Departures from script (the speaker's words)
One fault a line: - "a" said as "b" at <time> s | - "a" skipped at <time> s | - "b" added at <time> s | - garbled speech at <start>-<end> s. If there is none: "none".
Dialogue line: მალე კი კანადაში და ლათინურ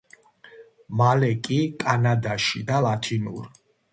none